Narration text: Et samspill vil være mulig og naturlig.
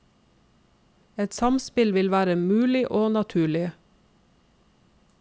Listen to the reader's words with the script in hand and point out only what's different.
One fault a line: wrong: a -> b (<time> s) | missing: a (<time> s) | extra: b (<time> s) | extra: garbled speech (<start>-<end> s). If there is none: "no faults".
no faults